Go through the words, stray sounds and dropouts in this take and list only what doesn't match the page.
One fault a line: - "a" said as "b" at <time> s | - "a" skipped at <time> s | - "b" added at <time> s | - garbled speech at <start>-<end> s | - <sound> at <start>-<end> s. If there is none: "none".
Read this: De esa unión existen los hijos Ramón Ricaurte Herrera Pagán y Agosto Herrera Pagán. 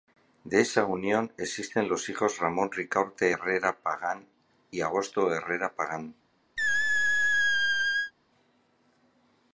- squeak at 6.6-8.1 s